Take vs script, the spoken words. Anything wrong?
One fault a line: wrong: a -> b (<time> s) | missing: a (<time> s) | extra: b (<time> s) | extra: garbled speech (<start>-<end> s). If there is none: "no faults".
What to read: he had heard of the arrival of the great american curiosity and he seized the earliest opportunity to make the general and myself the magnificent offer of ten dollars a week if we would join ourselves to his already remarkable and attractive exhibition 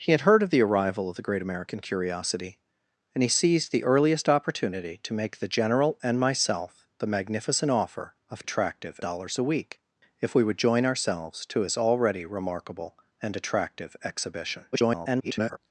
wrong: ten -> attractive (8.4 s)
extra: garbled speech (14.7-15.6 s)